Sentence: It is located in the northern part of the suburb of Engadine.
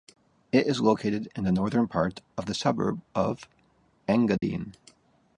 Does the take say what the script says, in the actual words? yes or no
yes